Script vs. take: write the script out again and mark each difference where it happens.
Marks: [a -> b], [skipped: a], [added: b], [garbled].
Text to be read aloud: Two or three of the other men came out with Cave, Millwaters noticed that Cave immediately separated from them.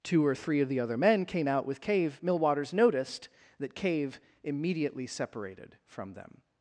Two or three of the other men came out with Cave, Millwaters noticed that Cave immediately separated from them.